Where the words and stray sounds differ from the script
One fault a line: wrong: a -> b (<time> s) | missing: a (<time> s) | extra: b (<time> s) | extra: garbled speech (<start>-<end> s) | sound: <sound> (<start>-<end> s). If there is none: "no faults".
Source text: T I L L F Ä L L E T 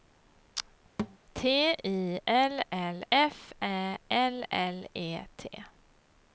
sound: thud (1.0-1.2 s)